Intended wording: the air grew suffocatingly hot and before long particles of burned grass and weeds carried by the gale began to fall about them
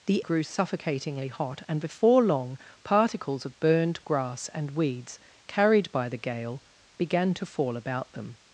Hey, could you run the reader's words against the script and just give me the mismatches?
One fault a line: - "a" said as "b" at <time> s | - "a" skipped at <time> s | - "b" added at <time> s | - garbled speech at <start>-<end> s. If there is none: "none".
- "air" skipped at 0.2 s